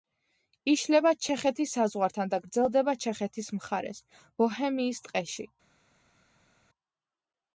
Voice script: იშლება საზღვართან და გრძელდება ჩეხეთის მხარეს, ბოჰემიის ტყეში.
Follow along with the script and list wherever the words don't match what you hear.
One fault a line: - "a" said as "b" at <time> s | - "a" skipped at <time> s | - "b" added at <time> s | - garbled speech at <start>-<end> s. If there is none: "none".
- "ჩეხეთის" added at 1.2 s